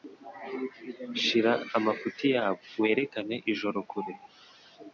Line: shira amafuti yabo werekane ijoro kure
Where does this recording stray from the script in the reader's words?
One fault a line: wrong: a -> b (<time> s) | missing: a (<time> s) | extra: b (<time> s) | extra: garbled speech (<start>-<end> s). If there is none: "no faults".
no faults